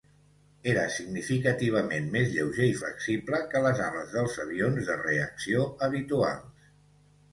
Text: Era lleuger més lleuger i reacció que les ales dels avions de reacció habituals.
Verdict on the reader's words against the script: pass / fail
fail